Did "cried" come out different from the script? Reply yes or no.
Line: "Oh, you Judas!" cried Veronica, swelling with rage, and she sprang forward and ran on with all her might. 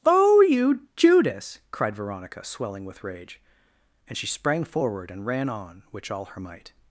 no